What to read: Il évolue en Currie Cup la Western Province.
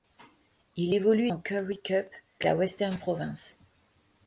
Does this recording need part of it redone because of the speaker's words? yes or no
no